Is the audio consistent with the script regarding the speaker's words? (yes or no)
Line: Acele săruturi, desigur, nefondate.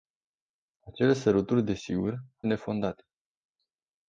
yes